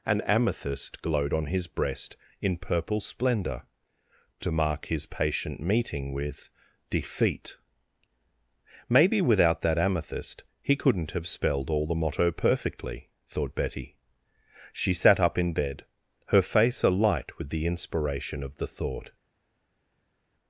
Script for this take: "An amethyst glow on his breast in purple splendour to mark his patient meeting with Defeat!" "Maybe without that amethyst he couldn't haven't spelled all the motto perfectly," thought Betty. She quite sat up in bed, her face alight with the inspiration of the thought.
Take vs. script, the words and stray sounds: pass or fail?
fail